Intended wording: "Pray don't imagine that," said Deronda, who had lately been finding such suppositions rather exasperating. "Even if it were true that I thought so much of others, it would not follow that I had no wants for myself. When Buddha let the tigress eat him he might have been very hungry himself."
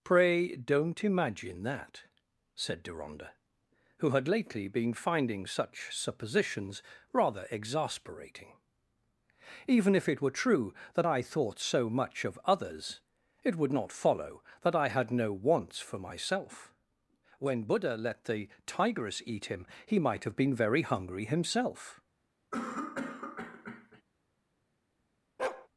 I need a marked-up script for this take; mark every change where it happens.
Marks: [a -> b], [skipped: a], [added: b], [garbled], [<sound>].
"Pray don't imagine that," said Deronda, who had lately been finding such suppositions rather exasperating. "Even if it were true that I thought so much of others, it would not follow that I had no wants for myself. When Buddha let the tigress eat him he might have been very hungry himself." [cough] [bark]